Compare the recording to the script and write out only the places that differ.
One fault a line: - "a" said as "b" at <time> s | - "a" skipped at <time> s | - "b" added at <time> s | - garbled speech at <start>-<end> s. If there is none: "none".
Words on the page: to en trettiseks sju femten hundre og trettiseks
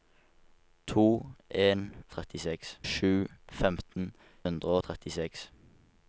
none